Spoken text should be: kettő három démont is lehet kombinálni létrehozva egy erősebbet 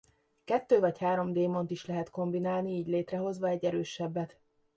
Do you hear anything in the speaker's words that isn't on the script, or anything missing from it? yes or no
yes